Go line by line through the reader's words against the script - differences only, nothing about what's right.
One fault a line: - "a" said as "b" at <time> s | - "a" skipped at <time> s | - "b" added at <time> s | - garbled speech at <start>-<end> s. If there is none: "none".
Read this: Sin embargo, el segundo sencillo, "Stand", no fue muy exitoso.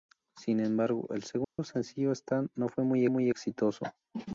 - "muy" added at 3.1 s